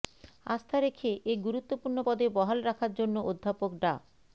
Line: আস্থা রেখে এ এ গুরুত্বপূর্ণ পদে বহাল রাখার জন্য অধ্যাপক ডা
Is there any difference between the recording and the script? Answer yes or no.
yes